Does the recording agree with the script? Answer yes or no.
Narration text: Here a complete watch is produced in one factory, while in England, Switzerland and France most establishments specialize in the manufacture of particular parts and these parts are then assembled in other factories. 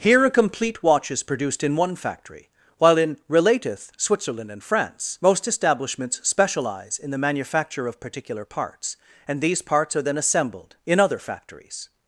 no